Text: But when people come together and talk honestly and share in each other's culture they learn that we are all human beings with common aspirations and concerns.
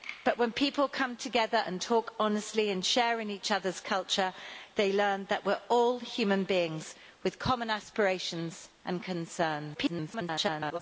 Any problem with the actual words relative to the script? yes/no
yes